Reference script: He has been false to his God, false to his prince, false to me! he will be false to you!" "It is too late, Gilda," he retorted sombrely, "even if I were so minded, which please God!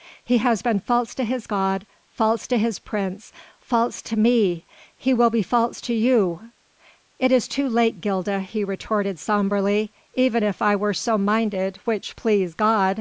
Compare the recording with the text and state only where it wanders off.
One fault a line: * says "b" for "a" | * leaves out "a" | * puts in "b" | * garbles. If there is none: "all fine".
all fine